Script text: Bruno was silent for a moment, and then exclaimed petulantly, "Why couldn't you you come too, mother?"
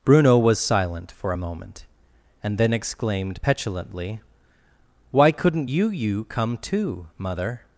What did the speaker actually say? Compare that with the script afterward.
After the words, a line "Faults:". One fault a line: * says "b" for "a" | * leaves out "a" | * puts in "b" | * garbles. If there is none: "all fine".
Bruno was silent for a moment, and then exclaimed petulantly, "Why couldn't you you come too, mother?"
Faults:
all fine